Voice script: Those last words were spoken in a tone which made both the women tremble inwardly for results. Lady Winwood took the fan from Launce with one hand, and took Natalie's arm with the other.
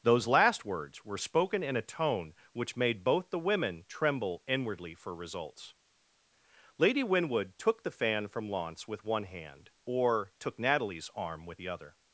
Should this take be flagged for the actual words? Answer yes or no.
yes